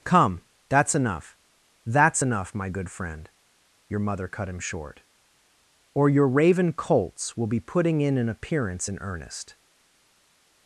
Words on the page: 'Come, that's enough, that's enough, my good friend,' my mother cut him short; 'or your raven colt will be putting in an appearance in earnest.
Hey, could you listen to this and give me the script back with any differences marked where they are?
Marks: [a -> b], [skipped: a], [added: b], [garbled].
'Come, that's enough, that's enough, my good friend,' [my -> your] mother cut him short; 'or your raven [colt -> colts] will be putting in an appearance in earnest.